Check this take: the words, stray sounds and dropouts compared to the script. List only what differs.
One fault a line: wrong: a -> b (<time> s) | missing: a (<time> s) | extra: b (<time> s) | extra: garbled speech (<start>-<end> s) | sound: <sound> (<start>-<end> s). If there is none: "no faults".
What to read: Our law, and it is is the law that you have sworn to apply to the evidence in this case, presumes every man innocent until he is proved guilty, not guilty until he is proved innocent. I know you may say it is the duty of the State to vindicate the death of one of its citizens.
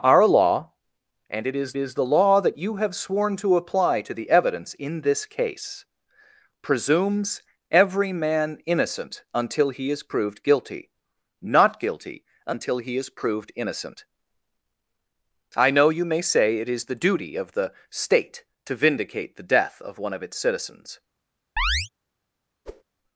sound: chirp (21.6-21.9 s)
sound: whoosh (22.7-22.8 s)